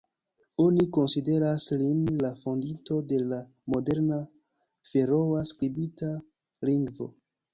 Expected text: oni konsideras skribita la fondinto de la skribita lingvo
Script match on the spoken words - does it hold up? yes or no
no